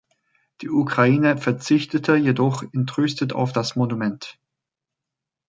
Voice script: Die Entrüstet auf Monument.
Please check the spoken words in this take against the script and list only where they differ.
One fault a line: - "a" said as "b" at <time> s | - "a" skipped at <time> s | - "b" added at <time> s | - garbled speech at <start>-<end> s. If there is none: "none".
- "Ukraine verzichtete jedoch" added at 0.7 s
- "das" added at 3.5 s